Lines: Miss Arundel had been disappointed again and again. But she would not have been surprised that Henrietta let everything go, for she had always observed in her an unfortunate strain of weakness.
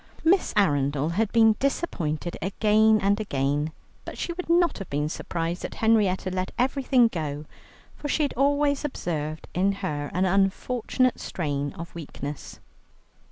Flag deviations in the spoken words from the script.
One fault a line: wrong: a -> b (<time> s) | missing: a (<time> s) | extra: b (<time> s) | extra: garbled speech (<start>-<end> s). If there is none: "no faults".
no faults